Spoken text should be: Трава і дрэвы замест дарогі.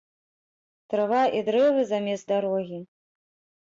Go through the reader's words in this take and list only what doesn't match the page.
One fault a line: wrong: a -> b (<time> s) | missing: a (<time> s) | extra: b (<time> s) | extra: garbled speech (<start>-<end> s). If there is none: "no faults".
no faults